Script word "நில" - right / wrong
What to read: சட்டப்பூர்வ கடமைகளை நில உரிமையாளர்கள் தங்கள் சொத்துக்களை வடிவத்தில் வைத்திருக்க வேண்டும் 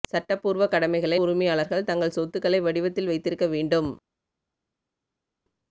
wrong